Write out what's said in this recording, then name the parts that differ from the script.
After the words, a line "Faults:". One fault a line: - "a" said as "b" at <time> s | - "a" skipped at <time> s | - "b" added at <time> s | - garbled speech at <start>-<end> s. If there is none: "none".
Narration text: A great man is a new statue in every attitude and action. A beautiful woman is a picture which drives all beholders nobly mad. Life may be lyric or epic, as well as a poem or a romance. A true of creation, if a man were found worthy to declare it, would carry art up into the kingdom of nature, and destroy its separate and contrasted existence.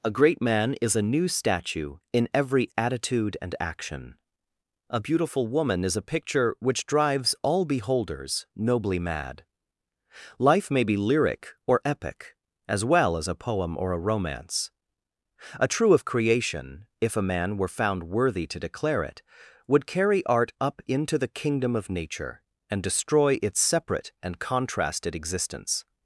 A great man is a new statue in every attitude and action. A beautiful woman is a picture which drives all beholders nobly mad. Life may be lyric or epic, as well as a poem or a romance. A true of creation, if a man were found worthy to declare it, would carry art up into the kingdom of nature, and destroy its separate and contrasted existence.
Faults:
none